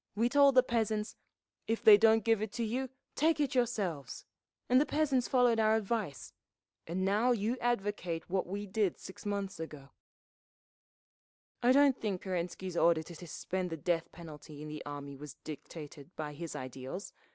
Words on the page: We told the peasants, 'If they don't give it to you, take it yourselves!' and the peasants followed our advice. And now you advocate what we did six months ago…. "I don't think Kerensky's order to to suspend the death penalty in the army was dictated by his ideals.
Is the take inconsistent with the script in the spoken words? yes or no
no